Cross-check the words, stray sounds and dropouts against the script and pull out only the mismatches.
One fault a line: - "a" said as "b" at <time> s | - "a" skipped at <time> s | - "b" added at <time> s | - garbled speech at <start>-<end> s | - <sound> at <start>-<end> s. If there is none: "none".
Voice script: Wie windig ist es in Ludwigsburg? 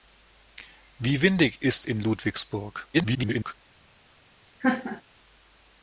- "es" skipped at 1.9 s
- garbled speech at 2.9-3.5 s
- laugh at 4.6-5.0 s